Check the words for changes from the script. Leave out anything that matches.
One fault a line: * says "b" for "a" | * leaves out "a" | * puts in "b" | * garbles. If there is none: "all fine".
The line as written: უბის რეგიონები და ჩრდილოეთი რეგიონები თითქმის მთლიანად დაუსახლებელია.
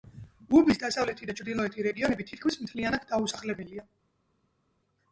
* says "დასავლეთი" for "რეგიონები"